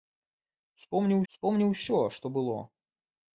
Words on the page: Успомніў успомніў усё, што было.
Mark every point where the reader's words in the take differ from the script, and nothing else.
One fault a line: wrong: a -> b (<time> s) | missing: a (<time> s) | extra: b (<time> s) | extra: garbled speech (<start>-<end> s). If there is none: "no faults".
no faults